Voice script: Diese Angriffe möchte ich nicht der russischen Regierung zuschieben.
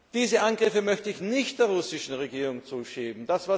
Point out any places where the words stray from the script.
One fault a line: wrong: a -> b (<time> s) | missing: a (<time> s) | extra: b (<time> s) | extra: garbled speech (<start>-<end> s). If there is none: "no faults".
no faults